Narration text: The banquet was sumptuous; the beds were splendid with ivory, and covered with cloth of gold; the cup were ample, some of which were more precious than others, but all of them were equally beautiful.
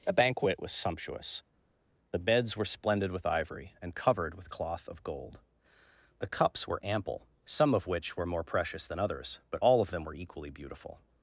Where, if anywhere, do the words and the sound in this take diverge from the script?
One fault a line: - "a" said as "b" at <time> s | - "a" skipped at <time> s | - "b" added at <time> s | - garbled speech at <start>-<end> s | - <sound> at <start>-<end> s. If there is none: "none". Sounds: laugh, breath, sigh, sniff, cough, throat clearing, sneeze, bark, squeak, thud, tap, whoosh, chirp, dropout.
- "cup" said as "cups" at 6.3 s